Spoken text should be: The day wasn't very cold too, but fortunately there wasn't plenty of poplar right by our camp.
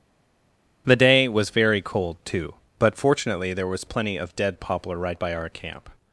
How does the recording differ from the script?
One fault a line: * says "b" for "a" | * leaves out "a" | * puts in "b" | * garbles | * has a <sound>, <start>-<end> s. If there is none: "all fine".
* says "was" for "wasn't"
* says "was" for "wasn't"
* puts in "dead"